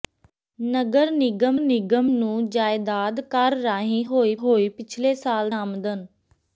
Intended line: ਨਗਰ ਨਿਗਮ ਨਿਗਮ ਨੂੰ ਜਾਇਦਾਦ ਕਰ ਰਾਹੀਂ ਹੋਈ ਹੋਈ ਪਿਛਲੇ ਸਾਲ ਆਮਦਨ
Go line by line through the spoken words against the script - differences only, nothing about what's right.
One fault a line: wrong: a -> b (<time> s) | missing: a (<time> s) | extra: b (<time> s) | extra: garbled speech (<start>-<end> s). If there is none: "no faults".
no faults